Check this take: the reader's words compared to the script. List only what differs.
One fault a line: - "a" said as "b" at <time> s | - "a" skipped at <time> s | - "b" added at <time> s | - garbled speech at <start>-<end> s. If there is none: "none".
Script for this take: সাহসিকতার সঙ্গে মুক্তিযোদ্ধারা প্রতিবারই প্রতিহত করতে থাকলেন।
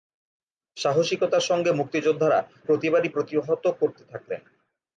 none